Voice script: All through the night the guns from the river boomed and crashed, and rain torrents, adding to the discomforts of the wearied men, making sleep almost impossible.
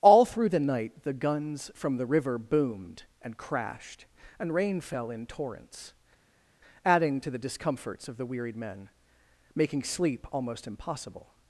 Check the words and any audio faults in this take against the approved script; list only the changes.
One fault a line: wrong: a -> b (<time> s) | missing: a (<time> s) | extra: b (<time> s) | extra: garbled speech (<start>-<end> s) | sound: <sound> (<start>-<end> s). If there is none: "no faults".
extra: fell in (4.8 s)